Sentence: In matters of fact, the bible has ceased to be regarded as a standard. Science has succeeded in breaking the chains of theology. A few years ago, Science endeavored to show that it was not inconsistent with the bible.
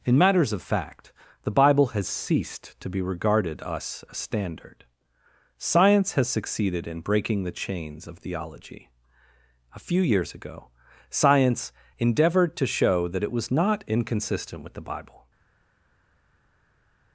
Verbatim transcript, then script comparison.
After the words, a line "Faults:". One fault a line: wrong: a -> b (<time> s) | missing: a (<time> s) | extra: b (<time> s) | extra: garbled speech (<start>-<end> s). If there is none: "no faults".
In matters of fact, the bible has ceased to be regarded us a standard. Science has succeeded in breaking the chains of theology. A few years ago, Science endeavored to show that it was not inconsistent with the bible.
Faults:
wrong: as -> us (3.6 s)